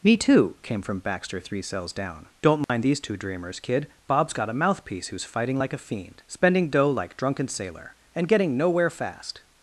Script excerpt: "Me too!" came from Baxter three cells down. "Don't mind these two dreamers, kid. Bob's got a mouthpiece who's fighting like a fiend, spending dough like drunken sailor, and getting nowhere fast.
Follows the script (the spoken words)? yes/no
yes